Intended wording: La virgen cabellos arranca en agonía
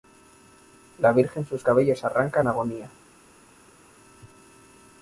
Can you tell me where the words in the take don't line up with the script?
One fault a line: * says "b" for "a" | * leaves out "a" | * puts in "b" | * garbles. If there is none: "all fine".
* puts in "sus"